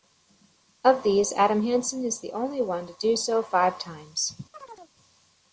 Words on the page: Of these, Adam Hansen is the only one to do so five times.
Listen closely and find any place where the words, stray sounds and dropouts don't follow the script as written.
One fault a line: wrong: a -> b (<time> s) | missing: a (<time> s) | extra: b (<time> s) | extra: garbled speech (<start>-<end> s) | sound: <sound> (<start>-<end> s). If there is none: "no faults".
sound: chirp (4.5-4.9 s)